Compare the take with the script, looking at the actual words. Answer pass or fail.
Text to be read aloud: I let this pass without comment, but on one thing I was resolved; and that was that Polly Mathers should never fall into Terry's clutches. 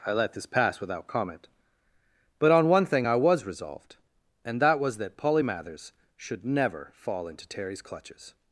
pass